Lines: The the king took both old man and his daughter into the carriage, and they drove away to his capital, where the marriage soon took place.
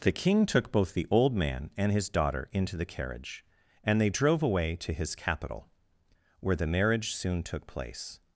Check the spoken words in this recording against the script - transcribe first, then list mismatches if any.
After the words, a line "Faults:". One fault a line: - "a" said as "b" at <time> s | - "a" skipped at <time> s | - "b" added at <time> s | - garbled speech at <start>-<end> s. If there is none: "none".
The king took both the old man and his daughter into the carriage, and they drove away to his capital, where the marriage soon took place.
Faults:
- "the" skipped at 0.1 s
- "the" added at 0.9 s